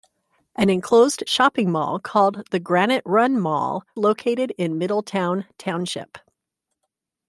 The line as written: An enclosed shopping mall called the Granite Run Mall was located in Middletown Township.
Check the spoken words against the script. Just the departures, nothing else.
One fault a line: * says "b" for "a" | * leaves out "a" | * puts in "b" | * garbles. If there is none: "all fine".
* leaves out "was"